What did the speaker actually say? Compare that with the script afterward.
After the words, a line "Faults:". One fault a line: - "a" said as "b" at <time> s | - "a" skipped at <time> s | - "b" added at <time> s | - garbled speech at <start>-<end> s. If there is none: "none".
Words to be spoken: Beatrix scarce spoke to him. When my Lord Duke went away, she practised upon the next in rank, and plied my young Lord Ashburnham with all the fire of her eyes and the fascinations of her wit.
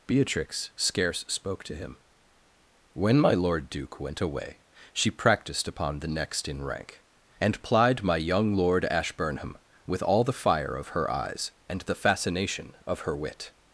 Beatrix scarce spoke to him. When my Lord Duke went away, she practised upon the next in rank, and plied my young Lord Ashburnham with all the fire of her eyes and the fascination of her wit.
Faults:
- "fascinations" said as "fascination" at 11.9 s